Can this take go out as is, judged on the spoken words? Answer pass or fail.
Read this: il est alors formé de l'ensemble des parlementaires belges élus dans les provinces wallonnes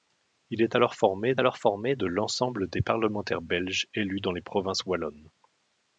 fail